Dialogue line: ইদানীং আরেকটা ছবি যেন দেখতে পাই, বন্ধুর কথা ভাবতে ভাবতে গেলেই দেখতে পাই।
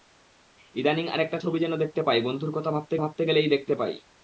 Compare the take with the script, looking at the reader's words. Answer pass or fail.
pass